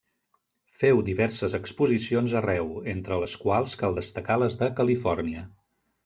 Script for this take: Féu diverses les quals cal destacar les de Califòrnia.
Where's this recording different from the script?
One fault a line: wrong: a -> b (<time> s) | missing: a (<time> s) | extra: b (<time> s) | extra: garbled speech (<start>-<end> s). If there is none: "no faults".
extra: exposicions arreu entre (1.6 s)